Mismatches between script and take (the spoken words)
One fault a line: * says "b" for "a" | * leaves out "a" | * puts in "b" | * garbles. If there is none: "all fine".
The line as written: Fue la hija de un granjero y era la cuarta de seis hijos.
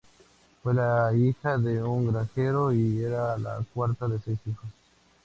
all fine